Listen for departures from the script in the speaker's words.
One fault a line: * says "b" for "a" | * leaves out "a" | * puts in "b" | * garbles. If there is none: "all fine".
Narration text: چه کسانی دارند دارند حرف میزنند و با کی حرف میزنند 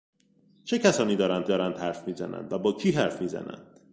all fine